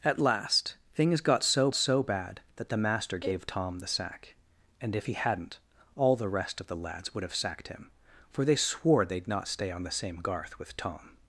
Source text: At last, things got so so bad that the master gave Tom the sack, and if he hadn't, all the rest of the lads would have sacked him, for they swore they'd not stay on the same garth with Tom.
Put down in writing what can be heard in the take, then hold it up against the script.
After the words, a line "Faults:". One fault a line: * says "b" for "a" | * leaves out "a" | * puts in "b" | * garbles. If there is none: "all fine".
At last, things got so so bad that the master gave Tom the sack, and if he hadn't, all the rest of the lads would have sacked him, for they swore they'd not stay on the same garth with Tom.
Faults:
all fine